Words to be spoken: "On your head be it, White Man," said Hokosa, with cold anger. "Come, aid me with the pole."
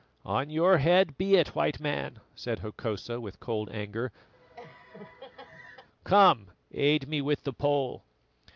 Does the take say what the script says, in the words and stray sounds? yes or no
no